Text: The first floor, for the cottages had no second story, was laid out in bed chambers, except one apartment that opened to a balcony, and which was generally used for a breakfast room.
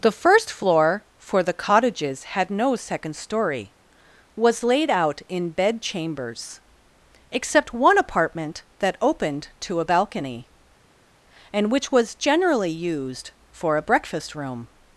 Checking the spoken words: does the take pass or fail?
pass